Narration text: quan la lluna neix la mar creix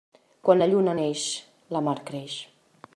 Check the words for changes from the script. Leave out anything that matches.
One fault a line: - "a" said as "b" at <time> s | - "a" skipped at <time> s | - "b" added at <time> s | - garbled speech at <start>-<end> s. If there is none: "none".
none